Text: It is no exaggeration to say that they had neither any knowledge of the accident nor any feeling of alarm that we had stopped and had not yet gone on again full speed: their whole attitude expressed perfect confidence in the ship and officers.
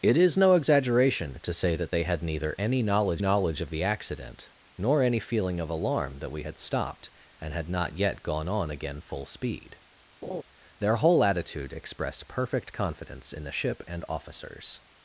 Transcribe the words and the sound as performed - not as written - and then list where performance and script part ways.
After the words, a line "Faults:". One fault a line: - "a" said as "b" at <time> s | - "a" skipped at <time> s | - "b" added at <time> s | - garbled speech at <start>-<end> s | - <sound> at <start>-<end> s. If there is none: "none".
It is no exaggeration to say that they had neither any knowledge knowledge of the accident nor any feeling of alarm that we had stopped and had not yet gone on again full speed: their whole attitude expressed perfect confidence in the ship and officers.
Faults:
- "knowledge" added at 3.2 s
- laugh at 10.2-10.4 s